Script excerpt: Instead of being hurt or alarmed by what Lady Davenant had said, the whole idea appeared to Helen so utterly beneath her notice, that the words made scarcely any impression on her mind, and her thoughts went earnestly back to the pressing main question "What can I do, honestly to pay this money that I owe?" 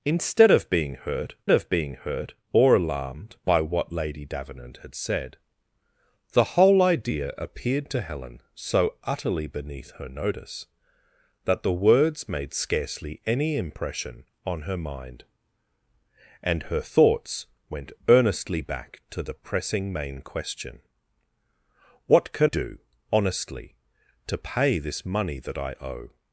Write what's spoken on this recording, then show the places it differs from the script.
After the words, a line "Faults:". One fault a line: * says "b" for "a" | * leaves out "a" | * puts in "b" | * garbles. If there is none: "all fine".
Instead of being hurt of being hurt or alarmed by what Lady Davenant had said, the whole idea appeared to Helen so utterly beneath her notice, that the words made scarcely any impression on her mind, and her thoughts went earnestly back to the pressing main question "What can do, honestly to pay this money that I owe?"
Faults:
* puts in "of being hurt"
* leaves out "I"